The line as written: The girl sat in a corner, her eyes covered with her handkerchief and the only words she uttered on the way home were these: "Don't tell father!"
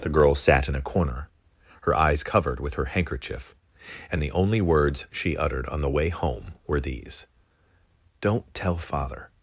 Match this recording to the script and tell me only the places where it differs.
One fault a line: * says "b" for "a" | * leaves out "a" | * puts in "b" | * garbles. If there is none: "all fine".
all fine